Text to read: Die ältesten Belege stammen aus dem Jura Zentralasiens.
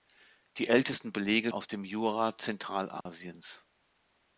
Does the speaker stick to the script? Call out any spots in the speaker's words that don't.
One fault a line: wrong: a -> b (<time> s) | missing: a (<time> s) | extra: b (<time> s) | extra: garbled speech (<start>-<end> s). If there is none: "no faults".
missing: stammen (1.5 s)